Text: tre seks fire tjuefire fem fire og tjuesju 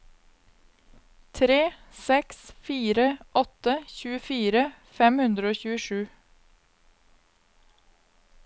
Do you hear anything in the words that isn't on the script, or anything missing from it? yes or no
yes